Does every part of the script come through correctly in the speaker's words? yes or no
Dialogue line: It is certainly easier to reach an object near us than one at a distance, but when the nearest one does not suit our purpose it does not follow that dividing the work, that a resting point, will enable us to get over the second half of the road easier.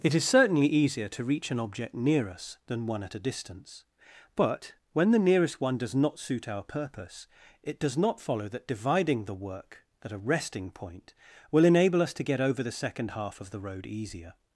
no